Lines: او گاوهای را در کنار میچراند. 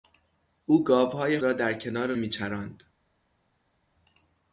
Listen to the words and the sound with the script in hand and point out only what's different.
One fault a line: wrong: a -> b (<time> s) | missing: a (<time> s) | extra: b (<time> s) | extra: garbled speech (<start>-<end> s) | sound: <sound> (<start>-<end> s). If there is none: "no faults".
no faults